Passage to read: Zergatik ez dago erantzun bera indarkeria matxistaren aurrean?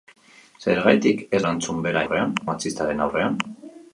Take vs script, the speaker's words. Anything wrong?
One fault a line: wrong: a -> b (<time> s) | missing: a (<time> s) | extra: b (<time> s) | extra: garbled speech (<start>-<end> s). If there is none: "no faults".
missing: dago (1.4 s)
wrong: indarkeria -> aurrean (2.0 s)